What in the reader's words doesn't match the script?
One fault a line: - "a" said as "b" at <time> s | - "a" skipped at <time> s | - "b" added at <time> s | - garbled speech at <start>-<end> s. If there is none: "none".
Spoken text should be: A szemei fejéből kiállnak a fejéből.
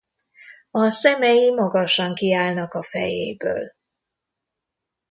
- "fejéből" said as "magasan" at 1.5 s